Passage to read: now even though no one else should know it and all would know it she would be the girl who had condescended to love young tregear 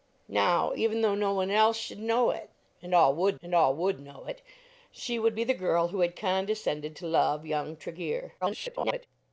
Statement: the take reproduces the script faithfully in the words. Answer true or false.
false